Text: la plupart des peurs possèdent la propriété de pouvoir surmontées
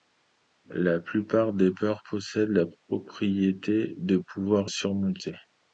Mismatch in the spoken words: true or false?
false